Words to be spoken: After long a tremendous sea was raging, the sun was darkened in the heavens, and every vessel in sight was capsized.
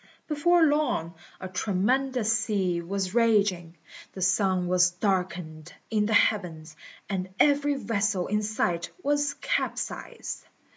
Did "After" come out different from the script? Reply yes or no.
yes